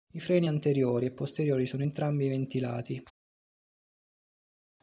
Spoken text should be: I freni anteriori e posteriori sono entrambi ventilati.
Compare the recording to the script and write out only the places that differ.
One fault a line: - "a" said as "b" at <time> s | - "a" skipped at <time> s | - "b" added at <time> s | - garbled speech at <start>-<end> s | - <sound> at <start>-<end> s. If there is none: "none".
none